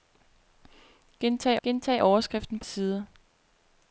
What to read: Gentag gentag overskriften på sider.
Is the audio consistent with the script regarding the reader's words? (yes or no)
yes